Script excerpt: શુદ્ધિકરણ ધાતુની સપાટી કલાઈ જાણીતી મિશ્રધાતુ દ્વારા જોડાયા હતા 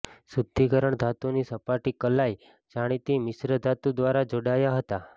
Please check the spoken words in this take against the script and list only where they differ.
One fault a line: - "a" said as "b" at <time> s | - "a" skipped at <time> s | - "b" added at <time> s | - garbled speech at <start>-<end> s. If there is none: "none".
none